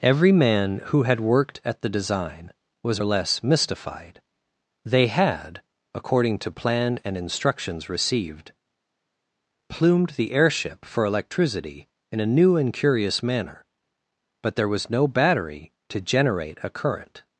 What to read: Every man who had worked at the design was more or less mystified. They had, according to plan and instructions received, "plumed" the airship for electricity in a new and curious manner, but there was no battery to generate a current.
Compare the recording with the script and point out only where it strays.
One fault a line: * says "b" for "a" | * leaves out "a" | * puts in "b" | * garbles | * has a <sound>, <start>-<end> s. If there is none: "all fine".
* leaves out "more"